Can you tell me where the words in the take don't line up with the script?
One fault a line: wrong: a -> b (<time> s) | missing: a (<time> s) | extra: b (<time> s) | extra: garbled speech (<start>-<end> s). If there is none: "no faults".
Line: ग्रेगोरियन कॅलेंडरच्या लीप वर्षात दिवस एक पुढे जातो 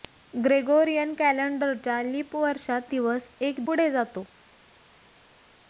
no faults